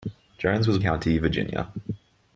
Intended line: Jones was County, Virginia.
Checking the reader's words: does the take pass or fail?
pass